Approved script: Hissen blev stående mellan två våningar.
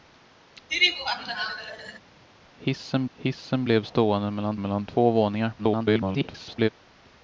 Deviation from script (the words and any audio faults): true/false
true